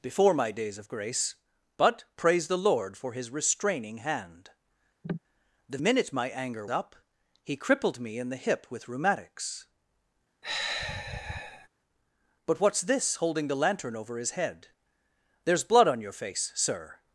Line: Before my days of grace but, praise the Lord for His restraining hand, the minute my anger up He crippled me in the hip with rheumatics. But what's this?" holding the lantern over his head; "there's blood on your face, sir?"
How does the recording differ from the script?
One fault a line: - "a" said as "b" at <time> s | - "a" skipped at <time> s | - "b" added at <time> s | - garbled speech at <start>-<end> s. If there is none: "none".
none